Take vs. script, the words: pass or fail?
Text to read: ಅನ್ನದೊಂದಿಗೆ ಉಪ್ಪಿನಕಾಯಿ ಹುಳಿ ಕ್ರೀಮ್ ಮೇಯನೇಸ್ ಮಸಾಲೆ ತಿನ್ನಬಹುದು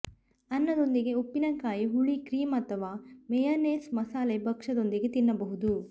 fail